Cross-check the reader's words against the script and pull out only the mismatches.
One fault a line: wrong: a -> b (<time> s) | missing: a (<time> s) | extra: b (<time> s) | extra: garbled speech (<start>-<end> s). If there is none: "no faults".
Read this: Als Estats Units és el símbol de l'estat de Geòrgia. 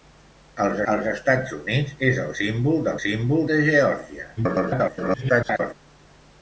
extra: als (0.9 s)
wrong: l'estat -> símbol (3.0 s)
extra: garbled speech (4.4-5.7 s)